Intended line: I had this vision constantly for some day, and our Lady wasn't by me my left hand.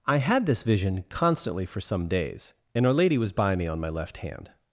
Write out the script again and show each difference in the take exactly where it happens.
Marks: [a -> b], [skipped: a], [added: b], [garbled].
I had this vision constantly for some [day, -> days] and our Lady [wasn't -> was] by me [added: on] my left hand.